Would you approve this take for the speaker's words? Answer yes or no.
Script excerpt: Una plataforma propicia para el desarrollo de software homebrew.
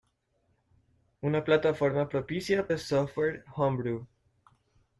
no